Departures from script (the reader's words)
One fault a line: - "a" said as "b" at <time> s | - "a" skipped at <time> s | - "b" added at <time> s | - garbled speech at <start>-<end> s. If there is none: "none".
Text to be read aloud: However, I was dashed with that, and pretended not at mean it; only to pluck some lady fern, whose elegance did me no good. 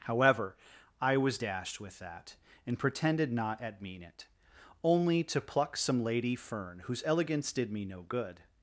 none